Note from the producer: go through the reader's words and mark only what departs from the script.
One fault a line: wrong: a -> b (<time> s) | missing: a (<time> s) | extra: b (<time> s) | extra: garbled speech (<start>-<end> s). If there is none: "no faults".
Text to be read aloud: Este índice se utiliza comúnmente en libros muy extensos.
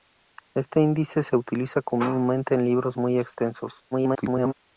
extra: garbled speech (3.9-4.5 s)